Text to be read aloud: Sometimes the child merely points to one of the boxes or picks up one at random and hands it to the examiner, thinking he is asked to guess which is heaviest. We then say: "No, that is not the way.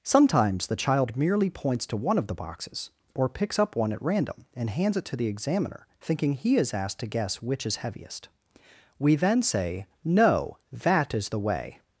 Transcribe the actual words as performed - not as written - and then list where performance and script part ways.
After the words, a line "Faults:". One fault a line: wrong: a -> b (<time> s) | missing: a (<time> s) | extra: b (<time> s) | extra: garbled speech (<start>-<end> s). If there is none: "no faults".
Sometimes the child merely points to one of the boxes or picks up one at random and hands it to the examiner, thinking he is asked to guess which is heaviest. We then say: "No, that is the way.
Faults:
missing: not (11.3 s)